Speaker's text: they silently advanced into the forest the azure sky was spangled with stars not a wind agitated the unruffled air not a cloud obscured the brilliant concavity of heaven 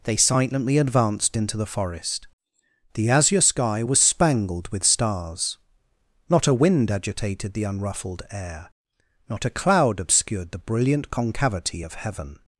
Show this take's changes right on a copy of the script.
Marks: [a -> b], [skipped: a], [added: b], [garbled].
they silently advanced into the forest the azure sky was spangled with stars not a wind agitated the unruffled air not a cloud obscured the brilliant concavity of heaven